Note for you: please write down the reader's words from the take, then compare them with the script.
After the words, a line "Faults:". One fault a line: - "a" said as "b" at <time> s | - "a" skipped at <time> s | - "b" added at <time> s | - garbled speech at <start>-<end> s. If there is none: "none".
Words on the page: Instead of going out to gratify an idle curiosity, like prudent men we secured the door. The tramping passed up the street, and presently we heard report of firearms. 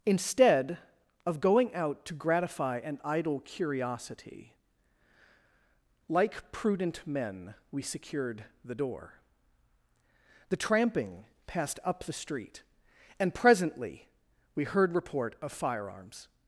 Instead of going out to gratify an idle curiosity, like prudent men we secured the door. The tramping passed up the street, and presently we heard report of firearms.
Faults:
none